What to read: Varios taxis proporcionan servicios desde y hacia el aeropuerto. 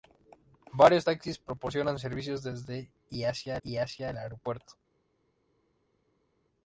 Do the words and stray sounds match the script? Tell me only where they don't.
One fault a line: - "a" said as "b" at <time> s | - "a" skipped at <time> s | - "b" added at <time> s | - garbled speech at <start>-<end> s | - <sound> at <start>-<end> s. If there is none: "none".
- "y hacia" added at 3.6 s